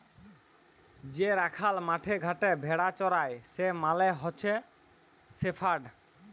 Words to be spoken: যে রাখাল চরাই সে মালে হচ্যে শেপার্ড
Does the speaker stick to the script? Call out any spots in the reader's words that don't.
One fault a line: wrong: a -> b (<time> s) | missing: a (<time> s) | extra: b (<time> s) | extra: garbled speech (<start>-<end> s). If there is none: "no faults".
extra: মাঠে ঘাটে ভেড়া (1.8 s)